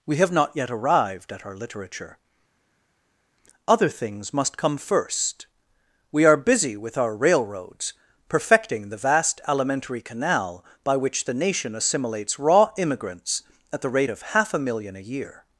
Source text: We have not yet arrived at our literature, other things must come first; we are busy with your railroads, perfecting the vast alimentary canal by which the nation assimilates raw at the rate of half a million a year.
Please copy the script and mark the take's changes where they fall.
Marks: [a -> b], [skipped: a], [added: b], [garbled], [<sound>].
We have not yet arrived at our literature, other things must come first; we are busy with [your -> our] railroads, perfecting the vast alimentary canal by which the nation assimilates raw [added: immigrants] at the rate of half a million a year.